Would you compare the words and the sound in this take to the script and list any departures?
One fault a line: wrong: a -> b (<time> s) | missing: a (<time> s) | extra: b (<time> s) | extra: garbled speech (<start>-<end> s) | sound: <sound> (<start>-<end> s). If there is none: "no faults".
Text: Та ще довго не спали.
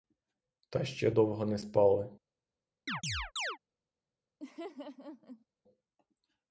sound: chirp (2.9-3.6 s)
sound: laugh (4.4-5.5 s)